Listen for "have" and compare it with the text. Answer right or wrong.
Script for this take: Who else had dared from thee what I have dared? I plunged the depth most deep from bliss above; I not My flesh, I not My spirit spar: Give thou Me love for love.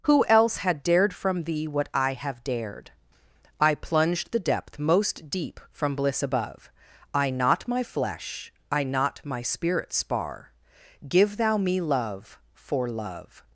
right